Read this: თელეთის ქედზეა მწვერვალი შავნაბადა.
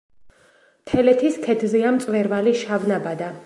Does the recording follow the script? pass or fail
pass